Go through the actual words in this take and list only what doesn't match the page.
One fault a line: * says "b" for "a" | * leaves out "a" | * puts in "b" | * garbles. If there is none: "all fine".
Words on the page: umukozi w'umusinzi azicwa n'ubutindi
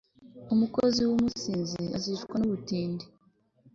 all fine